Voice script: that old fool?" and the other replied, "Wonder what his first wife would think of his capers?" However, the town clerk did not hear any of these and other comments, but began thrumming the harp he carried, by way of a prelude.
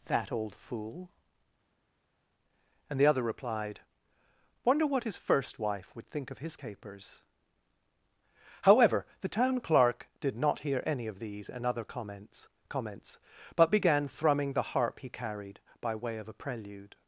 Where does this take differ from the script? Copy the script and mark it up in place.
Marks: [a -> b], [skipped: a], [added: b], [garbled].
that old fool?" and the other replied, "Wonder what his first wife would think of his capers?" However, the town clerk did not hear any of these and other comments, [added: comments] but began thrumming the harp he carried, by way of a prelude.